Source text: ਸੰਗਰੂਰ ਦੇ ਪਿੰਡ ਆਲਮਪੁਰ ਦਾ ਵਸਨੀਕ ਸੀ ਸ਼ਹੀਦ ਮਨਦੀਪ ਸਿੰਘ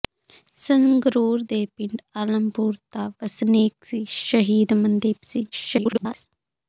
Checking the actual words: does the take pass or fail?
fail